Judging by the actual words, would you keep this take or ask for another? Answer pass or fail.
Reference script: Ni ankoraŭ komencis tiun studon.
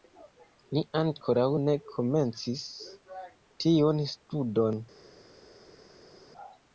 fail